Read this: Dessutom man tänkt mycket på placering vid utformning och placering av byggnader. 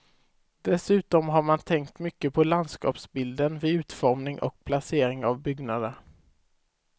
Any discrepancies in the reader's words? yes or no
yes